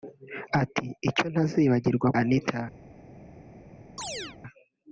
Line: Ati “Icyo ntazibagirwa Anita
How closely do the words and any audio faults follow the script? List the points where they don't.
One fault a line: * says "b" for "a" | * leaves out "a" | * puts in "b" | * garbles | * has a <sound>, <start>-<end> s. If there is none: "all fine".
* has a chirp, 4.0-4.4 s